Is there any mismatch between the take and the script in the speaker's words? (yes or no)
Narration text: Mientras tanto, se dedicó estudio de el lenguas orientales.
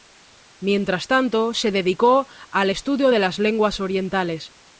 yes